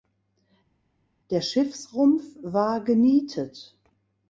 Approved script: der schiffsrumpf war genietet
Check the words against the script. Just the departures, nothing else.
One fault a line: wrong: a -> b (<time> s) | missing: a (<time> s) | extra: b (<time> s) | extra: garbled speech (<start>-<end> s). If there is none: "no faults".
no faults